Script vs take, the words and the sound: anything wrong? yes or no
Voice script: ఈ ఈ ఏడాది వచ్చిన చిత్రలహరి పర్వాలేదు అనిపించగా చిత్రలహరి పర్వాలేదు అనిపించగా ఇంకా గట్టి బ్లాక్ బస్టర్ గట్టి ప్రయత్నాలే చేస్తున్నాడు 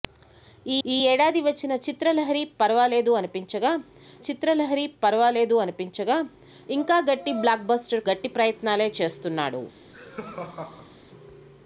yes